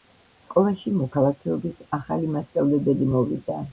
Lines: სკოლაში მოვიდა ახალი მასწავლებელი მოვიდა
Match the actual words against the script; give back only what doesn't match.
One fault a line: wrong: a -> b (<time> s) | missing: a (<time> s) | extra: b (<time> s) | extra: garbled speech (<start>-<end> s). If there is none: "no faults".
wrong: მოვიდა -> მოქალაქეობის (1.0 s)